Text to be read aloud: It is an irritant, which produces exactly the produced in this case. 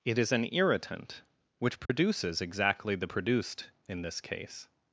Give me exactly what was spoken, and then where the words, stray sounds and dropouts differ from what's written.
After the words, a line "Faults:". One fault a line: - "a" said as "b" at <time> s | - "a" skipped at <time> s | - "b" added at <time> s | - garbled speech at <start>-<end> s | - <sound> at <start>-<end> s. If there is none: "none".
It is an irritant, which produces exactly the produced in this case.
Faults:
- dropout at 1.9-1.9 s